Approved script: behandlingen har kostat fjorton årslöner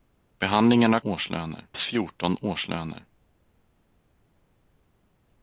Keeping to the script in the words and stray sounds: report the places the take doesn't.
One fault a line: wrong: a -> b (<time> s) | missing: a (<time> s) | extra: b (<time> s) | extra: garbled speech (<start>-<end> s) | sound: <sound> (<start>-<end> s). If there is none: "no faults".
wrong: kostat -> årslöner (1.0 s)